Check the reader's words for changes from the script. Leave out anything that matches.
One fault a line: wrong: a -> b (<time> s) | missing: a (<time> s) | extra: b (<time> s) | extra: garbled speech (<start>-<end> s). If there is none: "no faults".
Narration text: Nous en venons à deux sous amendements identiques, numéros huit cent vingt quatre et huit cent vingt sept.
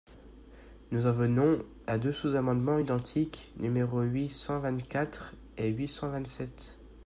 no faults